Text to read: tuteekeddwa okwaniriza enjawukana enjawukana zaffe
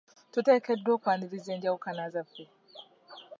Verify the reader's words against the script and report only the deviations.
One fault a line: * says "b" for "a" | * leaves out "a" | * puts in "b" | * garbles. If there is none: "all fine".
* leaves out "enjawukana"